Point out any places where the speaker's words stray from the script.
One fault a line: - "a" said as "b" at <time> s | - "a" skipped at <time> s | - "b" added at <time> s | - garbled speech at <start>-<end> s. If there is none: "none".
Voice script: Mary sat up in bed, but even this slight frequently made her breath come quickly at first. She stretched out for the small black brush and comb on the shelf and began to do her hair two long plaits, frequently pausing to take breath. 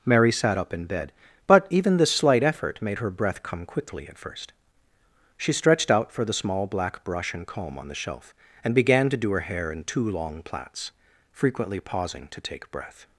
- "frequently" said as "effort" at 2.4 s
- "in" added at 9.7 s